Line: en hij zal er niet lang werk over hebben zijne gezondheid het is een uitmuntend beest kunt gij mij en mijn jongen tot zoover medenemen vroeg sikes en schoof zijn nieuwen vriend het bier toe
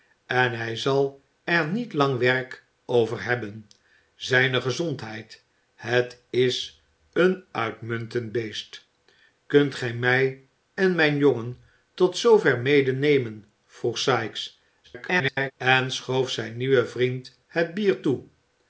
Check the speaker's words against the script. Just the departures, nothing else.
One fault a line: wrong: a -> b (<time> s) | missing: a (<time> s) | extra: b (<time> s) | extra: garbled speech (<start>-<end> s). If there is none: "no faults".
extra: garbled speech (14.8-15.5 s)